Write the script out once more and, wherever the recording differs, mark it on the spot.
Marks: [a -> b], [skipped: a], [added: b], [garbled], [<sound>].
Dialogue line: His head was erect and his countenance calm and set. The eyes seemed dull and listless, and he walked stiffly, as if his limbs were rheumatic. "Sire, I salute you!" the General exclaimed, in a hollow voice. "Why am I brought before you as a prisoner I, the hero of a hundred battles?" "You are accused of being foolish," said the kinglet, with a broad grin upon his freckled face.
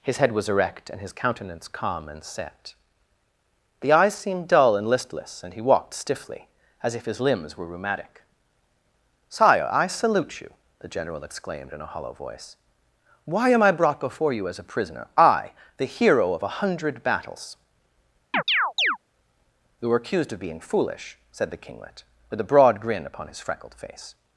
His head was erect and his countenance calm and set. The eyes seemed dull and listless, and he walked stiffly, as if his limbs were rheumatic. "Sire, I salute you!" the General exclaimed, in a hollow voice. "Why am I brought before you as a prisoner I, the hero of a hundred battles?" [chirp] "You [are -> were] accused of being foolish," said the kinglet, with a broad grin upon his freckled face.